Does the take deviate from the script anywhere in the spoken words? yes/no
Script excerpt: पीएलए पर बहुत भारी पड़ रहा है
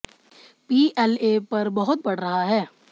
yes